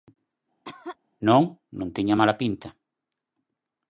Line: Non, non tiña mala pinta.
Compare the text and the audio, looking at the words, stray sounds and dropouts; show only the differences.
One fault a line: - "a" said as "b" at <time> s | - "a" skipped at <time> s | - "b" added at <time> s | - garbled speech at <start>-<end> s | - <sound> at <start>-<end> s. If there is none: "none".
- cough at 0.6-1.0 s